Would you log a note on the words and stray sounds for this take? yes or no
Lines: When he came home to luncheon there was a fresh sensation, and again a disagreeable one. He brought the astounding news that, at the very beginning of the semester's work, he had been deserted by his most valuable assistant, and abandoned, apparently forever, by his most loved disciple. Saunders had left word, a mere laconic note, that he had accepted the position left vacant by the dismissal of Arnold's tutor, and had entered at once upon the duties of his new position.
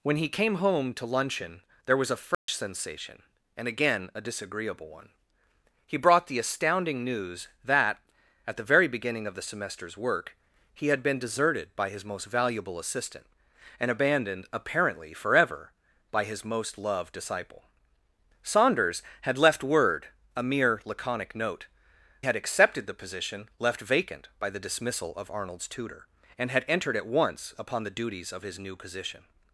yes